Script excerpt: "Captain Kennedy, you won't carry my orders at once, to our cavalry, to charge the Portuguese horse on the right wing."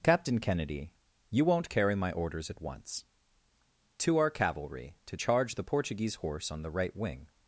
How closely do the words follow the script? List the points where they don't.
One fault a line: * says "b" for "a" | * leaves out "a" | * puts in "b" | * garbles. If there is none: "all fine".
all fine